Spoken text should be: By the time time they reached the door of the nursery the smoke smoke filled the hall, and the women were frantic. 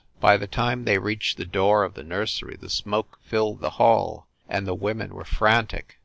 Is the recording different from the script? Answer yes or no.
yes